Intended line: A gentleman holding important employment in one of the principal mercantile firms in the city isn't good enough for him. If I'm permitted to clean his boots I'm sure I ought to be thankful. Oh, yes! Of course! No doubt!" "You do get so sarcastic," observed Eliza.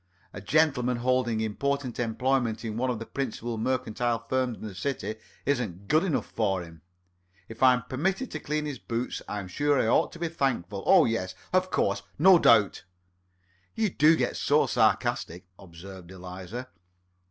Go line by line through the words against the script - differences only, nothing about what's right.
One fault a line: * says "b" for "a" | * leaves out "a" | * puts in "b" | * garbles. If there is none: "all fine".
all fine